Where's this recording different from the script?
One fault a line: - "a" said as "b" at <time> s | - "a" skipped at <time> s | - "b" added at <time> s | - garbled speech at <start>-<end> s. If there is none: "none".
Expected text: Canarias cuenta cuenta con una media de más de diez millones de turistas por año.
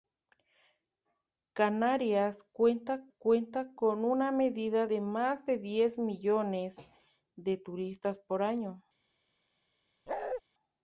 none